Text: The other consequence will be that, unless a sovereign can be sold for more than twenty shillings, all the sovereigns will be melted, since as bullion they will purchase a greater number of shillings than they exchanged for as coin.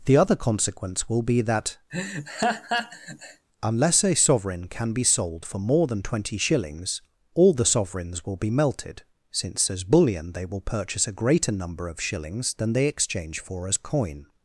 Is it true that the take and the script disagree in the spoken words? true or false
true